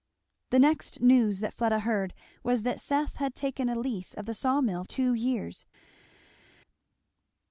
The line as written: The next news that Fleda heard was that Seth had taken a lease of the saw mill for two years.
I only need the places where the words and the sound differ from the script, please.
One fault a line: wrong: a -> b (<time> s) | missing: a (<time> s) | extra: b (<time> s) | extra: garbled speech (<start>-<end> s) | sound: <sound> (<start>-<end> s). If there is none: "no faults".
missing: for (4.8 s)